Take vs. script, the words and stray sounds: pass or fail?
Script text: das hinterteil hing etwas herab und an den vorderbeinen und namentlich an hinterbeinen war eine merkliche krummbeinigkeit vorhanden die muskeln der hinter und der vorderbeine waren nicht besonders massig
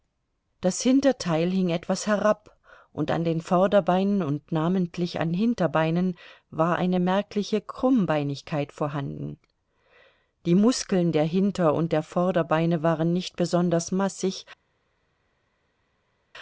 pass